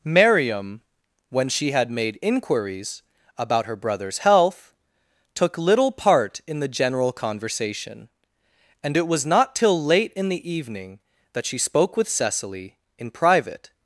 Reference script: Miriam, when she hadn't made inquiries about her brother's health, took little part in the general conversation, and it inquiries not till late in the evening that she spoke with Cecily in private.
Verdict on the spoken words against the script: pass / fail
fail